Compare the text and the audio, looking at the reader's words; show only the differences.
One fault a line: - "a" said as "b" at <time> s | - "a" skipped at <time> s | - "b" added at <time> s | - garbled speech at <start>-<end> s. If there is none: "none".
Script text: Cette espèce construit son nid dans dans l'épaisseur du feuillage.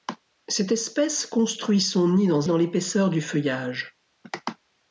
none